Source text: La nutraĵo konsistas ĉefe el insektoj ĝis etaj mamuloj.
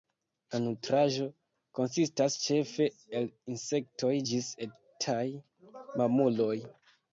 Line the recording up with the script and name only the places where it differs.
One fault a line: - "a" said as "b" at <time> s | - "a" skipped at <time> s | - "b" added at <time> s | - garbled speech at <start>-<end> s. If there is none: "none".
none